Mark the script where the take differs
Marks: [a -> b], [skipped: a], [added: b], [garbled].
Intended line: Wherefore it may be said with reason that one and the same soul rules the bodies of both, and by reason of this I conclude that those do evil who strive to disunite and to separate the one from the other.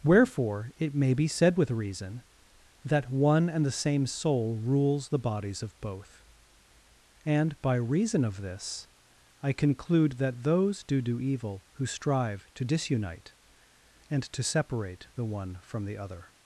Wherefore it may be said with reason that one and the same soul rules the bodies of both, and by reason of this I conclude that those do [added: do] evil who strive to disunite and to separate the one from the other.